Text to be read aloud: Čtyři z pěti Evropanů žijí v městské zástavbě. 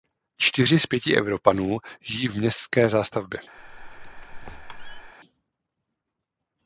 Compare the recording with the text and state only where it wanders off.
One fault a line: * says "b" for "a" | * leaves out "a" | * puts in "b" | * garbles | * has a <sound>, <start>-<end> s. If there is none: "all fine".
* has a squeak, 3.6-5.1 s